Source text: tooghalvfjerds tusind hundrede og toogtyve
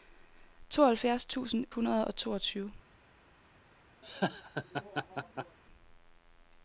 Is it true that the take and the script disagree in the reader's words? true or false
false